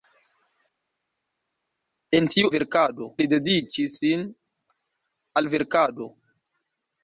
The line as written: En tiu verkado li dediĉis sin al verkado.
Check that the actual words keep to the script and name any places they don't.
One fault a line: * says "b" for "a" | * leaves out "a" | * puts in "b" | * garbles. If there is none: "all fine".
all fine